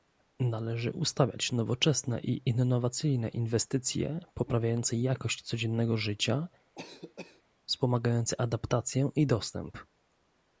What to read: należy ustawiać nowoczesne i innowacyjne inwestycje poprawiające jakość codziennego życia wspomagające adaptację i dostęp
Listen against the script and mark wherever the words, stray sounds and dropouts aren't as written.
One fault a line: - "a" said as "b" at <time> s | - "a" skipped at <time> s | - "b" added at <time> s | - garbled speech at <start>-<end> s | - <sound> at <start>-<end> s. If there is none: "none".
- cough at 6.7-7.4 s